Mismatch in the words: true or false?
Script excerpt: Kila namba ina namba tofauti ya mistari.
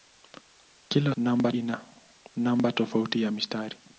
false